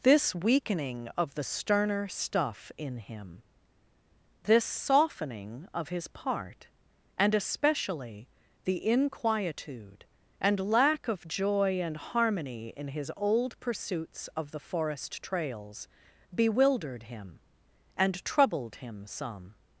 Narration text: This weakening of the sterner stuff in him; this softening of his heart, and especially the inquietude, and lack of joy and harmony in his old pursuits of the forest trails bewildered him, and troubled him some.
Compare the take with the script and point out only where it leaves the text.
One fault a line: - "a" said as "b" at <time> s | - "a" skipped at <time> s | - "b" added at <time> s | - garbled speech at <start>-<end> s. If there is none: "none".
- "heart" said as "part" at 6.1 s